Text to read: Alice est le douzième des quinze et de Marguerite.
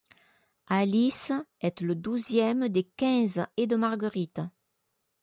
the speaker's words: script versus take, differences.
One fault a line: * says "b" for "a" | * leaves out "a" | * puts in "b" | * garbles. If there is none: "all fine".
all fine